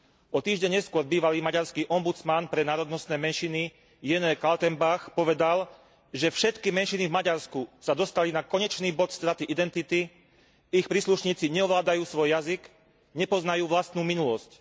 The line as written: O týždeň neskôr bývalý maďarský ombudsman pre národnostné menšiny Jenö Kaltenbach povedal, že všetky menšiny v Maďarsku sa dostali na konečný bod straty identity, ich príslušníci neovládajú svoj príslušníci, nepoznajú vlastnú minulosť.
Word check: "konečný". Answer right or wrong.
right